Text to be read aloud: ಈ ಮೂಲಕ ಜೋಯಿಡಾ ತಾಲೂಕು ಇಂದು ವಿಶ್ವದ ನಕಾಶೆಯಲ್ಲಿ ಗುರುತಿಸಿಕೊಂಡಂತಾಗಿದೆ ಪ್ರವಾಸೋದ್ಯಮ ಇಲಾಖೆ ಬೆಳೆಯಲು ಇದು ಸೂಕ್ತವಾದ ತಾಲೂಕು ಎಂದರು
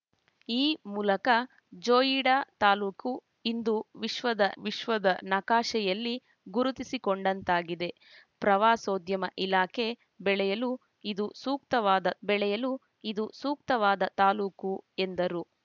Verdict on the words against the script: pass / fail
fail